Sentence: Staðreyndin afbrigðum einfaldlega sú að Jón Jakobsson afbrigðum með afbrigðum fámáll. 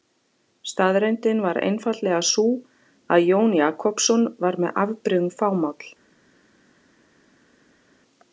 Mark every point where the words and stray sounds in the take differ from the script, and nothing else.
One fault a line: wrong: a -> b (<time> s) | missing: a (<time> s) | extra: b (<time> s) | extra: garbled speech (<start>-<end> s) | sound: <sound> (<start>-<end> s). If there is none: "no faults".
wrong: afbrigðum -> var (1.4 s)
wrong: afbrigðum -> var (4.5 s)